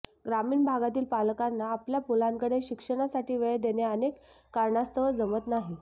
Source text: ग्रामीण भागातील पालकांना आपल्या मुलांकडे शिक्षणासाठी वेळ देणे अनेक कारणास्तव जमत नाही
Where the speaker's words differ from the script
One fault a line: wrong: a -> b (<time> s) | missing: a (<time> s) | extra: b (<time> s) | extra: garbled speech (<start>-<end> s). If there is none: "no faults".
no faults